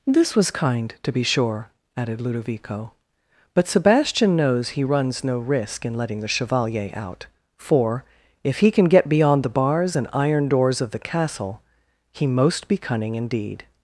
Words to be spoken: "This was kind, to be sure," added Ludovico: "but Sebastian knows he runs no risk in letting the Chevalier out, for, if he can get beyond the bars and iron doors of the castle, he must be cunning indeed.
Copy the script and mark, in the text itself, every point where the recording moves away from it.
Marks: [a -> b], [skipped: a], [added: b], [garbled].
"This was kind, to be sure," added Ludovico: "but Sebastian knows he runs no risk in letting the Chevalier out, for, if he can get beyond the bars and iron doors of the castle, he [must -> most] be cunning indeed.